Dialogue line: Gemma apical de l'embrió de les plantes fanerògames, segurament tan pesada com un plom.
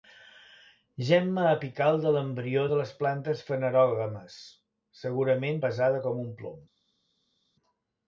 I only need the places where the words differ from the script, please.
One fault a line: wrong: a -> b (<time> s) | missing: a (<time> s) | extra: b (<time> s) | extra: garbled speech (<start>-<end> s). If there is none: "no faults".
missing: tan (5.6 s)